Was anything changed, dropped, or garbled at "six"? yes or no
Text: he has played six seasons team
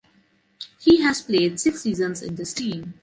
no